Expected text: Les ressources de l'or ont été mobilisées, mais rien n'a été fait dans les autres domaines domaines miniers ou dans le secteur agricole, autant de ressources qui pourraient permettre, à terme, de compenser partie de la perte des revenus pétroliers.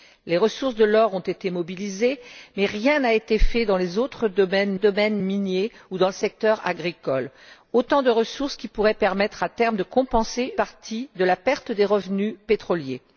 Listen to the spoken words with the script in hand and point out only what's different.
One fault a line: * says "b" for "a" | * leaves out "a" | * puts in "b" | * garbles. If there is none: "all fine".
all fine